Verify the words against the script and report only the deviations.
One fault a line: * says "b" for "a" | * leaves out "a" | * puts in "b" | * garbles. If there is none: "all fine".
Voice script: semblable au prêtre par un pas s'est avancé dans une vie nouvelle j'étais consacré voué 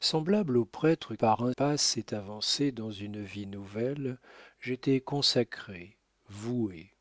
all fine